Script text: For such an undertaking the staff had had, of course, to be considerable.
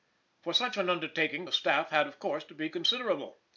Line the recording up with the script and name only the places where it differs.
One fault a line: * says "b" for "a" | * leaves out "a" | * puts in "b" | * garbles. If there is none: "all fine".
* leaves out "had"